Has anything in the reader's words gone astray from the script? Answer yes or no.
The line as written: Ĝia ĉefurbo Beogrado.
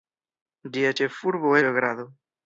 no